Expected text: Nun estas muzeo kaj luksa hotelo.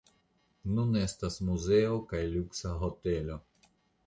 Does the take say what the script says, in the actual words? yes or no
yes